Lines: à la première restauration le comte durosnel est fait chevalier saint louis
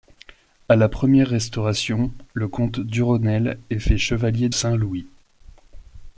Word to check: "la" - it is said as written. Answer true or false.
true